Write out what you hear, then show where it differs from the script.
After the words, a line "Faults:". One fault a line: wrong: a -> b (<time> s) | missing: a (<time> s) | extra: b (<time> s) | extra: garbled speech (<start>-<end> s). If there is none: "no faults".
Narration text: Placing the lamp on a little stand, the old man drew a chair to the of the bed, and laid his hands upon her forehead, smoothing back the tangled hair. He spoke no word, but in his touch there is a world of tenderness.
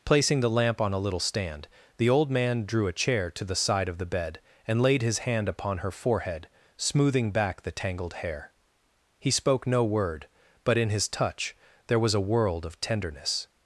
Placing the lamp on a little stand, the old man drew a chair to the side of the bed, and laid his hand upon her forehead, smoothing back the tangled hair. He spoke no word, but in his touch there was a world of tenderness.
Faults:
extra: side (3.5 s)
wrong: hands -> hand (5.2 s)
wrong: is -> was (12.0 s)